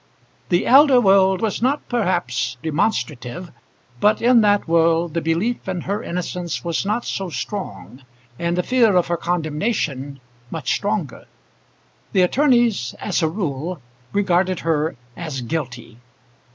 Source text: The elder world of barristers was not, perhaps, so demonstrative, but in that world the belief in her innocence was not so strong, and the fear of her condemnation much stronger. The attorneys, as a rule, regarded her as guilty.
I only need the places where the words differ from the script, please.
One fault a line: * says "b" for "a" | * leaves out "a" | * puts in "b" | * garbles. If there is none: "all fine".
* leaves out "of barristers"
* leaves out "so"